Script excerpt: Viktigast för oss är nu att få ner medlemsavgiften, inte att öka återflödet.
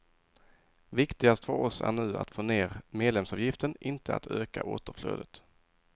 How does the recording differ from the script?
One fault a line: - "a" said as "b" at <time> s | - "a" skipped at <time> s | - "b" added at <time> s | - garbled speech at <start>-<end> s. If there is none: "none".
none